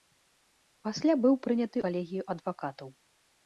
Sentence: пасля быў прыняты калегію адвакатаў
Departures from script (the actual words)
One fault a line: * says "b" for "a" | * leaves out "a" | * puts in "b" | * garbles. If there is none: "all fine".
all fine